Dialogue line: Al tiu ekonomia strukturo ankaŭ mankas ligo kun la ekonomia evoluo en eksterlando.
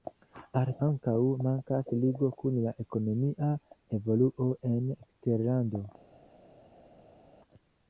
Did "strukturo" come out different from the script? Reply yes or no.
yes